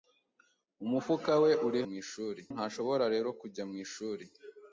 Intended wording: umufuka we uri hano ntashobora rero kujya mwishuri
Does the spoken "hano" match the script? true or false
false